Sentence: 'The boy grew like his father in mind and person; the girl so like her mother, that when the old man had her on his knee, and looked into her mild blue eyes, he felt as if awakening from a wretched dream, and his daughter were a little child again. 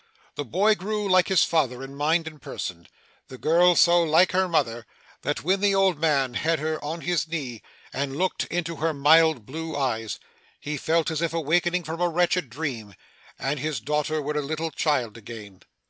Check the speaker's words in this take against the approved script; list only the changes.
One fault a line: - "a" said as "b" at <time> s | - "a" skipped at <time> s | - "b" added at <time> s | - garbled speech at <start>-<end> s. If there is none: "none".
none